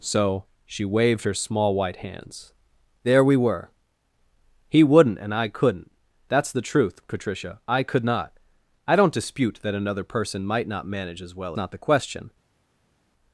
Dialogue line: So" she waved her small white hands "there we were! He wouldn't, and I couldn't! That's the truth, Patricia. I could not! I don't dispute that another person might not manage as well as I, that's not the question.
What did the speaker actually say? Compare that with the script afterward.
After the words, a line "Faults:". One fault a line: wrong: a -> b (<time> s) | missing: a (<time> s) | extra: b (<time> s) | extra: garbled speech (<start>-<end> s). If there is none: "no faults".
So" she waved her small white hands "there we were! He wouldn't, and I couldn't! That's the truth, Patricia. I could not! I don't dispute that another person might not manage as well not the question.
Faults:
missing: as I that's (11.6 s)